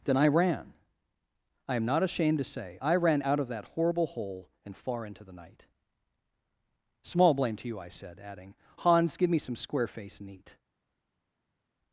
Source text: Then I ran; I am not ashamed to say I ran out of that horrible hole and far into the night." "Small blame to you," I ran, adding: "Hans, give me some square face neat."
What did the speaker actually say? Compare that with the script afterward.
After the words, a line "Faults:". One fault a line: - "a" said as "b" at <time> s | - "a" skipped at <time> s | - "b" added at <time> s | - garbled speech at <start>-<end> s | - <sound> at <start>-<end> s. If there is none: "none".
Then I ran; I am not ashamed to say I ran out of that horrible hole and far into the night." "Small blame to you," I said, adding: "Hans, give me some square face neat."
Faults:
- "ran" said as "said" at 7.9 s